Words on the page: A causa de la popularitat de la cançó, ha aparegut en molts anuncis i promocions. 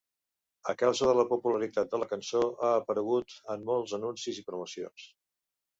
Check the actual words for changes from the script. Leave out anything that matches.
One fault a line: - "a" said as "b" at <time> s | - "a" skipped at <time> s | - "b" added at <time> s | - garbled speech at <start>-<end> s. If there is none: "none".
none